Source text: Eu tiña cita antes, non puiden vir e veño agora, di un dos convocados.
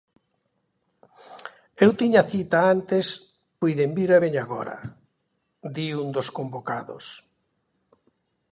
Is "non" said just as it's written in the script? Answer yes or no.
no